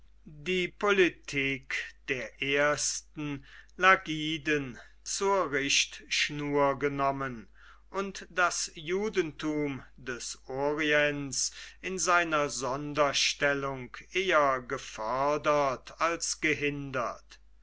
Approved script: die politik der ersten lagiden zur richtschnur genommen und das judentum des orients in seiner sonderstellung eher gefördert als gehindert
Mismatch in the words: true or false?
false